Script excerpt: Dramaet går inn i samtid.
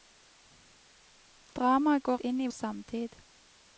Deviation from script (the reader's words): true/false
false